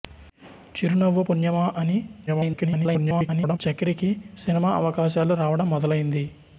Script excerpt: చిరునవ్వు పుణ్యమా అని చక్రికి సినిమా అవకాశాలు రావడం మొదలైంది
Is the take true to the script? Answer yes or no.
no